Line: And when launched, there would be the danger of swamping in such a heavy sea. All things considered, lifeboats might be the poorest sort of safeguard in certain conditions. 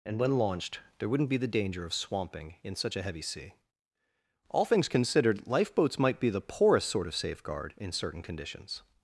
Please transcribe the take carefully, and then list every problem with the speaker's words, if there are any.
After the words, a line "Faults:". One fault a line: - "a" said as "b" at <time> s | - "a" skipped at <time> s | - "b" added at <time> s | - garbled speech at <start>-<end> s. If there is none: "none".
And when launched, there wouldn't be the danger of swamping in such a heavy sea. All things considered, lifeboats might be the poorest sort of safeguard in certain conditions.
Faults:
- "would" said as "wouldn't" at 1.1 s